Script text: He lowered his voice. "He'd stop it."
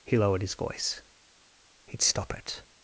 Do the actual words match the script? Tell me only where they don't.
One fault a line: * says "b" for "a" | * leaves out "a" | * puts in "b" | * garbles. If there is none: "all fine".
all fine